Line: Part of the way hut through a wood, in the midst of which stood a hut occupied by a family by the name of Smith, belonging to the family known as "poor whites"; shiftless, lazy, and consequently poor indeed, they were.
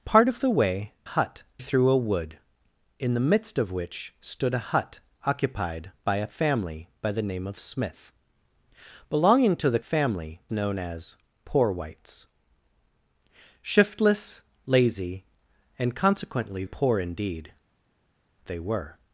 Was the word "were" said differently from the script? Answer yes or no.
no